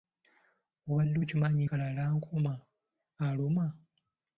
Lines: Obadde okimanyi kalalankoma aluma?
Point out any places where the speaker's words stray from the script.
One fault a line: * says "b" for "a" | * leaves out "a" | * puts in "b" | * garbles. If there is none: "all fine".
all fine